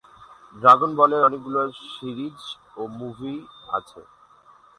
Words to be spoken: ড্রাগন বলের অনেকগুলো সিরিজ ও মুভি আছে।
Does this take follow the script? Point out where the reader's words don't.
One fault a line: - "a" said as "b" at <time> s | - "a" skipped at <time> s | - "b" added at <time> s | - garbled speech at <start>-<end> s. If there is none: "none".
none